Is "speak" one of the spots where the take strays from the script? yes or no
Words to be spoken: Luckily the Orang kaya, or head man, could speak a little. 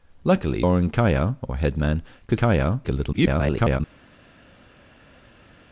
yes